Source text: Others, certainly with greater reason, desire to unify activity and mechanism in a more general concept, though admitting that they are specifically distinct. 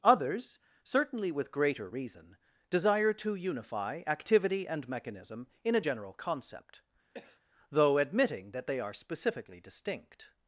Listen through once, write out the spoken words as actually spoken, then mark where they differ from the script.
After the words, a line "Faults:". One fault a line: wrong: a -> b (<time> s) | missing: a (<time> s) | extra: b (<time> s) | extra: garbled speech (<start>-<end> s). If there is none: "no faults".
Others, certainly with greater reason, desire to unify activity and mechanism in a general concept, though admitting that they are specifically distinct.
Faults:
missing: more (5.8 s)